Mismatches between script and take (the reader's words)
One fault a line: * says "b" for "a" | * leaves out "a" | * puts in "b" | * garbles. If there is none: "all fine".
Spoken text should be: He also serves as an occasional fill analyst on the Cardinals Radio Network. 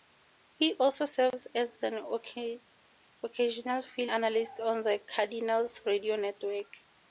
all fine